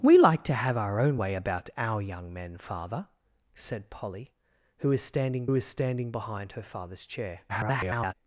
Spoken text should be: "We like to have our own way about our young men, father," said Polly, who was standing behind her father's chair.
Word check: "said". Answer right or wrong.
right